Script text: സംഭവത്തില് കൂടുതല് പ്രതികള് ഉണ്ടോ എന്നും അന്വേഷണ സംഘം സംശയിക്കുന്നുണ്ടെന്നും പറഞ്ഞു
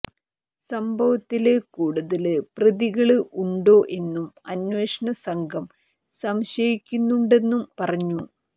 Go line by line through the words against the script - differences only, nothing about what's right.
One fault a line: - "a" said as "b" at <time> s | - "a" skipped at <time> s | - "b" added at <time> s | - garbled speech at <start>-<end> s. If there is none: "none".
none